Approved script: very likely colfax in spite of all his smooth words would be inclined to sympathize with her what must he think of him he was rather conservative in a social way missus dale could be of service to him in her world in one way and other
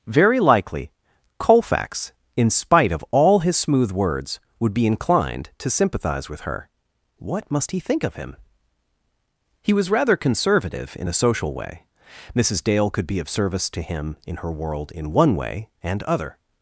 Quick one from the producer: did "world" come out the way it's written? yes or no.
yes